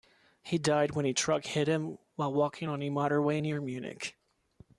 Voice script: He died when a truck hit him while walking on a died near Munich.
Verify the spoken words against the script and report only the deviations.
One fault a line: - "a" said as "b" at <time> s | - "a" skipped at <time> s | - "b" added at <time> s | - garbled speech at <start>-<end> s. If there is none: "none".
- "died" said as "motorway" at 2.9 s